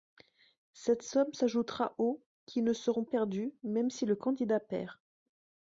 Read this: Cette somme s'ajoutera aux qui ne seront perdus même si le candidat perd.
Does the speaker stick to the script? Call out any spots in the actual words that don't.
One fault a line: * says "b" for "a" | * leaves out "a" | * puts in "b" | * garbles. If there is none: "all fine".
all fine